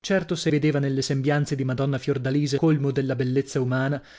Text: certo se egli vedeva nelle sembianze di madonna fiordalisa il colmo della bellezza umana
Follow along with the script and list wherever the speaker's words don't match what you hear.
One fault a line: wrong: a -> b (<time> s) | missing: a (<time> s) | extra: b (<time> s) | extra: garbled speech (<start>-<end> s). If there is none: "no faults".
missing: egli (0.5 s)
missing: il (2.6 s)